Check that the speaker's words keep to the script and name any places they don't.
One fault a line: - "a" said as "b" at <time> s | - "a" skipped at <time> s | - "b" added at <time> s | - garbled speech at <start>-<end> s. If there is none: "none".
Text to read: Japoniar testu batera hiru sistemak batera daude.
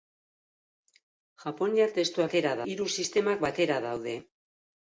none